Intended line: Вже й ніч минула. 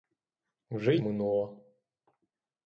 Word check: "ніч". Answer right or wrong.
wrong